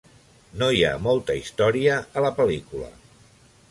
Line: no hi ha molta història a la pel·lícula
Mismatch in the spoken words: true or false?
false